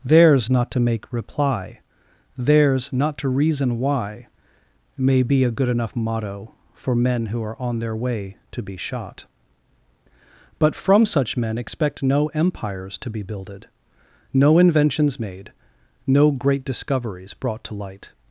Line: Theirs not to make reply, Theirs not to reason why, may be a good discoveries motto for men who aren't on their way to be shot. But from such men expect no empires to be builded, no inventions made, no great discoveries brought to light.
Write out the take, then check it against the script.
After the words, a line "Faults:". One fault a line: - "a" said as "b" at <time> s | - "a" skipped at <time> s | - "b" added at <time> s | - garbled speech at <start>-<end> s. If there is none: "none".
Theirs not to make reply, Theirs not to reason why, may be a good enough motto for men who are on their way to be shot. But from such men expect no empires to be builded, no inventions made, no great discoveries brought to light.
Faults:
- "discoveries" said as "enough" at 5.7 s
- "aren't" said as "are" at 7.4 s